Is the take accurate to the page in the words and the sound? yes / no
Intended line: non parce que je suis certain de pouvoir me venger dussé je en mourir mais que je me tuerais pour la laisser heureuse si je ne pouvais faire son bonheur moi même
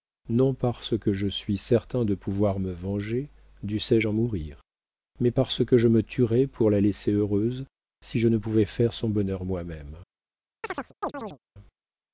no